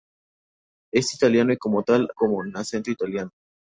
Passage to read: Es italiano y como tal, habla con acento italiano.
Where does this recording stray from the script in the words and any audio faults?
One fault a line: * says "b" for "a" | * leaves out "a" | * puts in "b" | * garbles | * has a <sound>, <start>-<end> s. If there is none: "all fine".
* leaves out "habla"